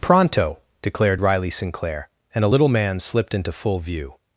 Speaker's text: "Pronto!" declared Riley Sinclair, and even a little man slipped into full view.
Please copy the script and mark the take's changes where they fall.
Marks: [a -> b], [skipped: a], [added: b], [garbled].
"Pronto!" declared Riley Sinclair, and [skipped: even] a little man slipped into full view.